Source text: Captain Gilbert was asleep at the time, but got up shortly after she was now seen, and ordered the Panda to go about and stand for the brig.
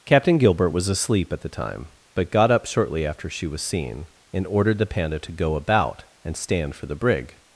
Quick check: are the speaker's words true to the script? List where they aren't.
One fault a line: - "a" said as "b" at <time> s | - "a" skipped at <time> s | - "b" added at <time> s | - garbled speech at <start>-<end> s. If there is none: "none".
- "now" skipped at 3.6 s